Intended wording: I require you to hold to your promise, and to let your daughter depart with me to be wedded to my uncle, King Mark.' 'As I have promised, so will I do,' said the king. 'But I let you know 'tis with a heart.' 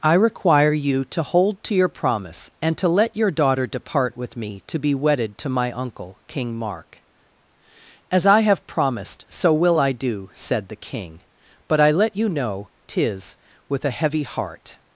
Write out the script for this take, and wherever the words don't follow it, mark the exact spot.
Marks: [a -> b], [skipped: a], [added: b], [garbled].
I require you to hold to your promise, and to let your daughter depart with me to be wedded to my uncle, King Mark.' 'As I have promised, so will I do,' said the king. 'But I let you know 'tis with a [added: heavy] heart.'